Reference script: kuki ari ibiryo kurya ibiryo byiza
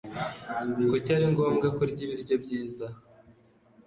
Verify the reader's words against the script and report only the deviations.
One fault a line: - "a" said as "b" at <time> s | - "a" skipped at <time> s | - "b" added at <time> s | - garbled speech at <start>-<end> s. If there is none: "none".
- "ibiryo" said as "ngombwa" at 1.3 s